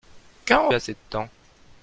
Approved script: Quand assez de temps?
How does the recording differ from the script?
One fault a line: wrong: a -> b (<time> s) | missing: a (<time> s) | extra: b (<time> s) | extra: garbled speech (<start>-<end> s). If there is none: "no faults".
no faults